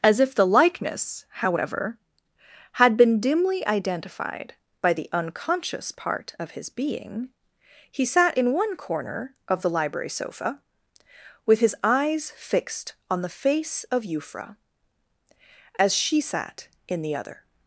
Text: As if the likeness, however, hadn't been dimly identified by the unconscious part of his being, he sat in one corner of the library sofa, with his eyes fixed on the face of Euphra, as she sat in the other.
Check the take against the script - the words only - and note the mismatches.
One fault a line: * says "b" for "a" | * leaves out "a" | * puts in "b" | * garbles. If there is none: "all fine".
* says "had" for "hadn't"